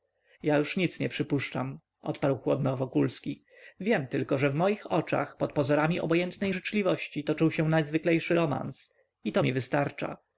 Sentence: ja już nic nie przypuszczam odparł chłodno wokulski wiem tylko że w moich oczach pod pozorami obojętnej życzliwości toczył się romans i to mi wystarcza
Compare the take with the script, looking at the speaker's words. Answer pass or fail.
fail